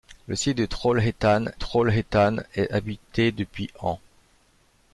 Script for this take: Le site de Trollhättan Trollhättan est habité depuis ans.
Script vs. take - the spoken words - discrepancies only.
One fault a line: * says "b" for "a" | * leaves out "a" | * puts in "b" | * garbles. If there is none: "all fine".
all fine